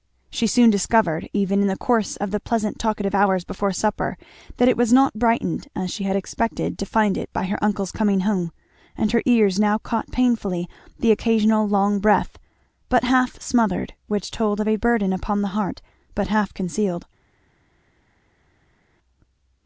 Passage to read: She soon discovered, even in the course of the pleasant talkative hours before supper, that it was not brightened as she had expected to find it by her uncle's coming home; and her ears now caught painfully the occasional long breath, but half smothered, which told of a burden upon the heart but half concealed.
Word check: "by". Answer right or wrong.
right